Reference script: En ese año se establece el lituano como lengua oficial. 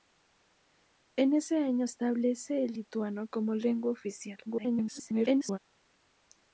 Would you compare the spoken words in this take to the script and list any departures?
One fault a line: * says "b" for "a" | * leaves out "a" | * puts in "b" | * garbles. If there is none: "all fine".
* leaves out "se"
* garbles